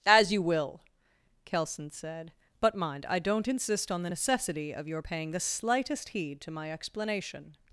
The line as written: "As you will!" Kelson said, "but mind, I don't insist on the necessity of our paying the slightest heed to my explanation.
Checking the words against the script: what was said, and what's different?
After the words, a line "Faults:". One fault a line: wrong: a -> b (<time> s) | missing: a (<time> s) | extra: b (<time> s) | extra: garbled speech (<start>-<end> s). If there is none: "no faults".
"As you will!" Kelson said, "but mind, I don't insist on the necessity of your paying the slightest heed to my explanation.
Faults:
wrong: our -> your (4.9 s)